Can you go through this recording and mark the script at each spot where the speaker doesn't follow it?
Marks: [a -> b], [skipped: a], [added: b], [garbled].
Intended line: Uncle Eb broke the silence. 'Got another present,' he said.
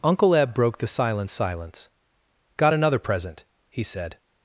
Uncle Eb broke the silence. [added: silence] 'Got another present,' he said.